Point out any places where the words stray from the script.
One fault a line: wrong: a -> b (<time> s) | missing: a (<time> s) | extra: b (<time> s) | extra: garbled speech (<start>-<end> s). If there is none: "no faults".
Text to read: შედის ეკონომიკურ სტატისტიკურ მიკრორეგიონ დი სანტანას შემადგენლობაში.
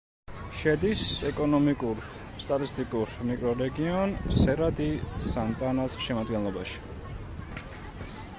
extra: სერა (4.4 s)